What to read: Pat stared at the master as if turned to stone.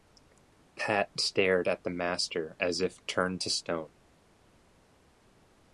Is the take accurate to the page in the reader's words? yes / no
yes